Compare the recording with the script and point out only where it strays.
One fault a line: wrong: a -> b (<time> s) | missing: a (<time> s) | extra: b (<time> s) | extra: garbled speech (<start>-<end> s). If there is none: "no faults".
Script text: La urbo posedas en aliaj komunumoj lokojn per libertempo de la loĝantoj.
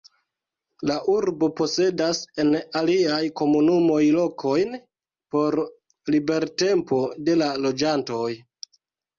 wrong: per -> por (5.4 s)